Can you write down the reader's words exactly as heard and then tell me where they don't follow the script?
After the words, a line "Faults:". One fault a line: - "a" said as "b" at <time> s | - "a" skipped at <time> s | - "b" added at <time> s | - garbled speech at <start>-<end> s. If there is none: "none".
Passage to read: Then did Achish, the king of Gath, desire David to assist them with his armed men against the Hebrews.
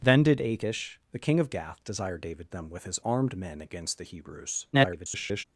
Then did Achish, the king of Gath, desire David them with his armed men against the Hebrews. [garbled]
Faults:
- "to assist" skipped at 2.5 s
- garbled speech at 4.7-5.4 s